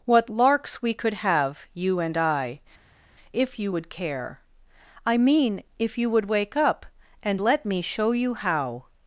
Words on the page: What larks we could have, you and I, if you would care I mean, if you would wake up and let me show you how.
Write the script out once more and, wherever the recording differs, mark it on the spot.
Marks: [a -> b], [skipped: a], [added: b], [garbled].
What larks we could have, you and I, if you would care I mean, if you would wake up and let me show you how.